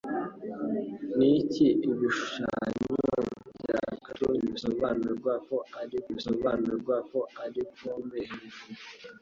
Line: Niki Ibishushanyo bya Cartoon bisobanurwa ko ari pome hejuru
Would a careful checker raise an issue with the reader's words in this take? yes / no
yes